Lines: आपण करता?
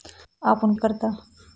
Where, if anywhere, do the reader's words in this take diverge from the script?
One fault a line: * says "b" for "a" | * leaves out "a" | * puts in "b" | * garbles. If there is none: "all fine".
all fine